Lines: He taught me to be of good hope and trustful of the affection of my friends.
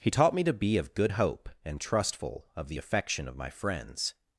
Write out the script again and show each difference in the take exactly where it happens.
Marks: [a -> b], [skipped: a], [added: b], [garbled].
He taught me to be of good hope and trustful of the affection of my friends.